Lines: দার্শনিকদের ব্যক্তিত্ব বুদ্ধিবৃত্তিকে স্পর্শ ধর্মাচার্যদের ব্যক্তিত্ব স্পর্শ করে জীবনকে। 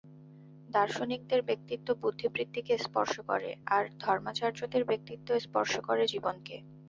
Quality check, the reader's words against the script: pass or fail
fail